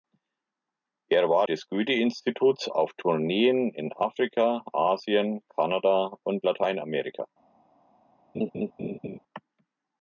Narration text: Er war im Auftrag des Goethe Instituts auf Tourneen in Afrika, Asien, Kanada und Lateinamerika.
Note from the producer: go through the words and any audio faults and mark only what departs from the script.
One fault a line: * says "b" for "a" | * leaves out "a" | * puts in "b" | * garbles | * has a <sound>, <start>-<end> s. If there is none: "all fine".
* leaves out "im Auftrag"
* has a laugh, 8.3-9.2 s